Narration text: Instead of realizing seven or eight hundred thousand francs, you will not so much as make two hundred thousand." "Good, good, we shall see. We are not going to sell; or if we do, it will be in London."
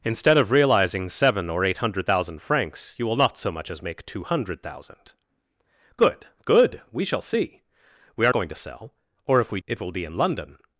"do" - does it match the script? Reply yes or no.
no